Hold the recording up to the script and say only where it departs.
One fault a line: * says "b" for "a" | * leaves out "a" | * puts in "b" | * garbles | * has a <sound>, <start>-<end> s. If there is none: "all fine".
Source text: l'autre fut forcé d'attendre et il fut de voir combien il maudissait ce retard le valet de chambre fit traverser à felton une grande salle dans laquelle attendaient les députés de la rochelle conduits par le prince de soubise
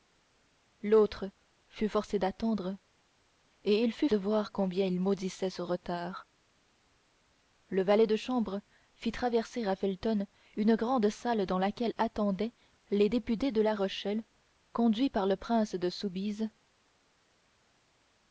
all fine